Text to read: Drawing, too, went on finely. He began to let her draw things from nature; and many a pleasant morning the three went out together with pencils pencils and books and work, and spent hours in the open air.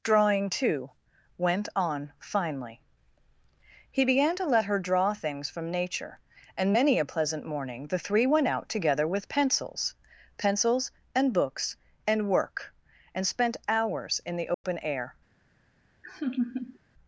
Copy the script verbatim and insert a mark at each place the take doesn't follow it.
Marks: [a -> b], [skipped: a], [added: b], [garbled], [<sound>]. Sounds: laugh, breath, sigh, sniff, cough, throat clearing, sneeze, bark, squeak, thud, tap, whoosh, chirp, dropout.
Drawing, too, went on finely. He began to let her draw things from nature; and many a pleasant morning the three went out together with pencils pencils and books and work, and spent hours in the open [dropout] air. [laugh]